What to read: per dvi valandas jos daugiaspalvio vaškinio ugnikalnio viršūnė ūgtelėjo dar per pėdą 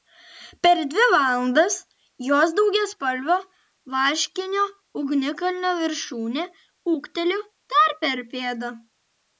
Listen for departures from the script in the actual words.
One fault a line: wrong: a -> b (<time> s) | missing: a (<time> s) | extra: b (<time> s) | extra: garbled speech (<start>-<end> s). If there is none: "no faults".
no faults